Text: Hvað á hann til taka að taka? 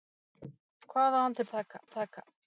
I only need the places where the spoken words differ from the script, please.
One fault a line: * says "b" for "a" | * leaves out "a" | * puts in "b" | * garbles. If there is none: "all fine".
all fine